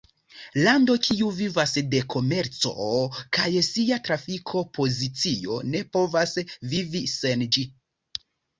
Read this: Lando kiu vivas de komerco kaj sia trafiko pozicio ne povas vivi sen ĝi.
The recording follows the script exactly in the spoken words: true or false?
true